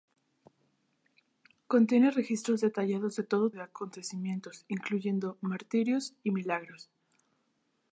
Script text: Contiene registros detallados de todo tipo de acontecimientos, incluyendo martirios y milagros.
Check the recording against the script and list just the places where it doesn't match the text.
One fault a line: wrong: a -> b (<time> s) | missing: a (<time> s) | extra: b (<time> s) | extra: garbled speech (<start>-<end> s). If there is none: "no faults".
missing: tipo (3.5 s)